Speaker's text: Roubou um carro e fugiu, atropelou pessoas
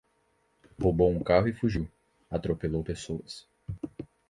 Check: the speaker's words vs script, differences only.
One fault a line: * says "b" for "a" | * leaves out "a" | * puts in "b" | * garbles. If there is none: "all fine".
all fine